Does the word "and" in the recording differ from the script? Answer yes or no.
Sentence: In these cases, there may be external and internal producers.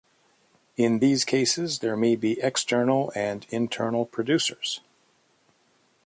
no